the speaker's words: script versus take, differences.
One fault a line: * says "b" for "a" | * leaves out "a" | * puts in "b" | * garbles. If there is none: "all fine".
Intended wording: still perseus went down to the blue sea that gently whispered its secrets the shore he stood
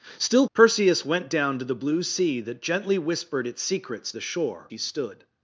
all fine